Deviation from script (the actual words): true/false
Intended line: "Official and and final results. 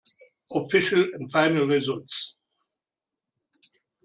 true